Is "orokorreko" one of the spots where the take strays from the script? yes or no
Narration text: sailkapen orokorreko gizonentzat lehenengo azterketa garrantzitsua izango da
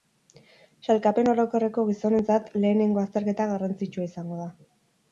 no